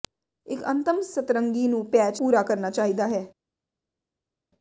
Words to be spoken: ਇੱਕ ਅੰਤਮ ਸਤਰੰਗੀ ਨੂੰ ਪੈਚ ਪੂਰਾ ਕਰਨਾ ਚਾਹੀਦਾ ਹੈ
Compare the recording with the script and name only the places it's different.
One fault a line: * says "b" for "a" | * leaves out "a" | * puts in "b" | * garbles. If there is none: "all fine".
all fine